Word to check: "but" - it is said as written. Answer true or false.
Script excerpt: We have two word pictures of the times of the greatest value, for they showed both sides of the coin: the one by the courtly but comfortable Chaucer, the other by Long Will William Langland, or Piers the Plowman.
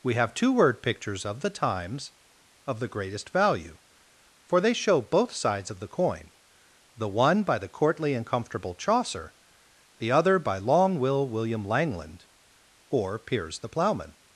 false